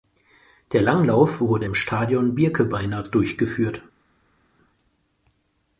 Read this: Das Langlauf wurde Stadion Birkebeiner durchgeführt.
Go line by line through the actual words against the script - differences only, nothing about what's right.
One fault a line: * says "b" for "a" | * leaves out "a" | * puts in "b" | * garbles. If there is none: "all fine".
* says "Der" for "Das"
* puts in "im"